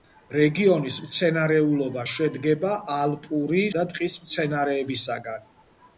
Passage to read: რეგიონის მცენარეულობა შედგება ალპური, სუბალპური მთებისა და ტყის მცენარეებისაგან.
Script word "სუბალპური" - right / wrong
wrong